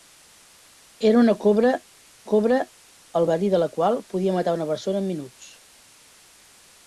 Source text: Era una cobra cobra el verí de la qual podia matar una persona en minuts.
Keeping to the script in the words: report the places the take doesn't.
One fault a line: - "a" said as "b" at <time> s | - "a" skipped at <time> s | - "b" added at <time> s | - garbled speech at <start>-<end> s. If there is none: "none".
none